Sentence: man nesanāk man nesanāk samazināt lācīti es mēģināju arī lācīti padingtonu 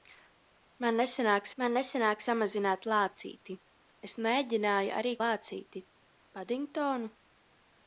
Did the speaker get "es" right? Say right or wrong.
right